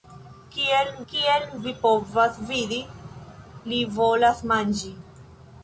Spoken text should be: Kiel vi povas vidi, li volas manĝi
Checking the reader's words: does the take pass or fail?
fail